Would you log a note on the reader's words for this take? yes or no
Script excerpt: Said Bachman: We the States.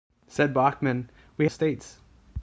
no